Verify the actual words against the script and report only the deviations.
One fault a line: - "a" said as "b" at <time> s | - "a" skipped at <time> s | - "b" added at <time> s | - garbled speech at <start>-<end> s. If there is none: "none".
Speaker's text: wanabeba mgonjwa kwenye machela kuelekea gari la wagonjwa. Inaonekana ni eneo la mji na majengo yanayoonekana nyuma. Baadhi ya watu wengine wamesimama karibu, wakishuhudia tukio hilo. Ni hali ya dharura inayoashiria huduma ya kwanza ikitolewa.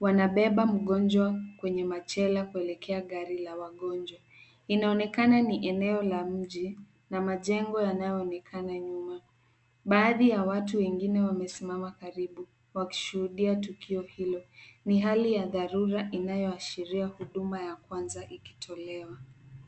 none